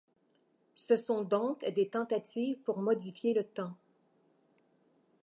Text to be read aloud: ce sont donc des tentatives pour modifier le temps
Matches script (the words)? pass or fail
pass